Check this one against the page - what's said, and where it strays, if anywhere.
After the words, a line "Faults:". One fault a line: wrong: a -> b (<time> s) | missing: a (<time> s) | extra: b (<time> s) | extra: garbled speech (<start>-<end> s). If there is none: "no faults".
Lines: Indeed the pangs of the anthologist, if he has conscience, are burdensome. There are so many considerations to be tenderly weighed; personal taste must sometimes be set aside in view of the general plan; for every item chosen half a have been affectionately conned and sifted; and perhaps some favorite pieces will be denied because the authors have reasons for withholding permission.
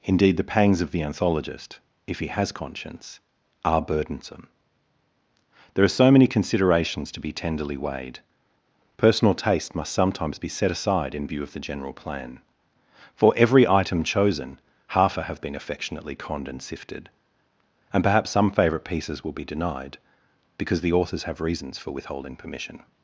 Indeed the pangs of the anthologist, if he has conscience, are burdensome. There are so many considerations to be tenderly weighed; personal taste must sometimes be set aside in view of the general plan; for every item chosen half a have been affectionately conned and sifted; and perhaps some favorite pieces will be denied because the authors have reasons for withholding permission.
Faults:
no faults